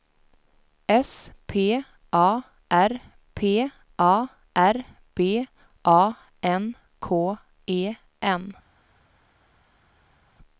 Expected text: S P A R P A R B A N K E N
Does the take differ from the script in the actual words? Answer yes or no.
no